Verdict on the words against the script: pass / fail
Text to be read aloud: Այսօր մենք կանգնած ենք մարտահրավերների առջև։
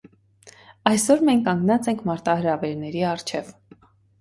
pass